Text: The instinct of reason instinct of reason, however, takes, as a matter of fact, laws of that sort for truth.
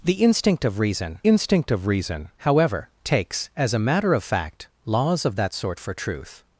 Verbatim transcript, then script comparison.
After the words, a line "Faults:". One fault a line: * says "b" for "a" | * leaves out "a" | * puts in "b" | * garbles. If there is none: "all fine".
The instinct of reason instinct of reason, however, takes, as a matter of fact, laws of that sort for truth.
Faults:
all fine